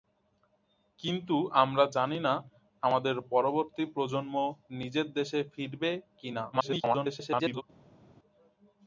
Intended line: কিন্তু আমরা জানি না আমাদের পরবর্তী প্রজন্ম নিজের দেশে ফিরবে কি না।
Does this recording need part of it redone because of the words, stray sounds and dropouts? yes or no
yes